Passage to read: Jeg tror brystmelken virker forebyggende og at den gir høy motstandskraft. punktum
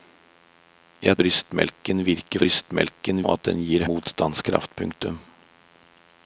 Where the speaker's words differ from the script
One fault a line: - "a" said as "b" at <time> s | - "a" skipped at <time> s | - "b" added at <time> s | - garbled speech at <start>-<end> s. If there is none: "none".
- "tror" skipped at 1.2 s
- "forebyggende" said as "brystmelken" at 2.4 s
- "høy" skipped at 3.9 s